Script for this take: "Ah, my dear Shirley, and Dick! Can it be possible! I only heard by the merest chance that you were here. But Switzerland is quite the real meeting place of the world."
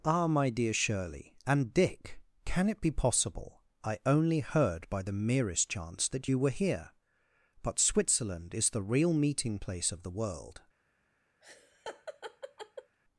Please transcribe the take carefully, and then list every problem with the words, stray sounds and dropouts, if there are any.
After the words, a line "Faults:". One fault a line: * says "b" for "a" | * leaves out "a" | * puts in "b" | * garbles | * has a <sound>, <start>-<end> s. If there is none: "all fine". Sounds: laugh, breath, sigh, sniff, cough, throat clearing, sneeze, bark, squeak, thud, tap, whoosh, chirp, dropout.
"Ah, my dear Shirley, and Dick! Can it be possible! I only heard by the merest chance that you were here. But Switzerland is the real meeting place of the world."
Faults:
* leaves out "quite"
* has a laugh, 11.4-13.0 s